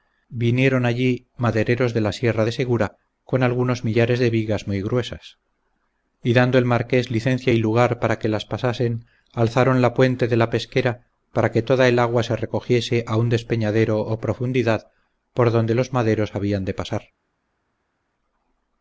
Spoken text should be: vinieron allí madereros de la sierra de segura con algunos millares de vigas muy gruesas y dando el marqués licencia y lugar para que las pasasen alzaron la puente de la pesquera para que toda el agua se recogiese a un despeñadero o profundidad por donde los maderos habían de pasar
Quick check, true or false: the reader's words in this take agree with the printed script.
true